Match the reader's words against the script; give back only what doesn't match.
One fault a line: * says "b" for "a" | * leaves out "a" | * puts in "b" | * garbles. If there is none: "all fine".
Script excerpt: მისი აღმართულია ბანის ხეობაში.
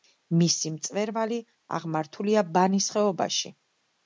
* puts in "მწვერვალი"